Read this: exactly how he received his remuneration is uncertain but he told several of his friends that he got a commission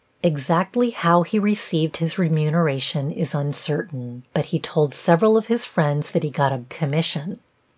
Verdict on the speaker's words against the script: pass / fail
pass